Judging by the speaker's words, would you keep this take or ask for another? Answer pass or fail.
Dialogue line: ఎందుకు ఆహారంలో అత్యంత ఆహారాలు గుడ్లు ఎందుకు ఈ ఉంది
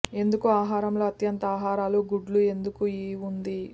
pass